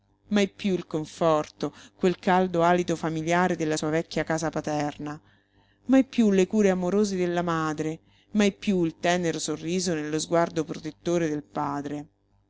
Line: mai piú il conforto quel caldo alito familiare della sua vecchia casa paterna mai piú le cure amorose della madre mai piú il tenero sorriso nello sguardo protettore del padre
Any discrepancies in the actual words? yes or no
no